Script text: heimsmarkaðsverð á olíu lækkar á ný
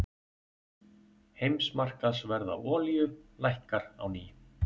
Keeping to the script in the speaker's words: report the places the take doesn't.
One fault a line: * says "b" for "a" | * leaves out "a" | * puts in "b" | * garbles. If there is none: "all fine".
all fine